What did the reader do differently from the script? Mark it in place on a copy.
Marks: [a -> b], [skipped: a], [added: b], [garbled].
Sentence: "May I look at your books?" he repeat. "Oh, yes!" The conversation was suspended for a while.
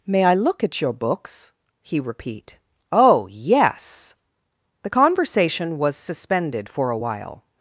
"May I look at your books?" he repeat. "Oh, yes!" The conversation was suspended for a while.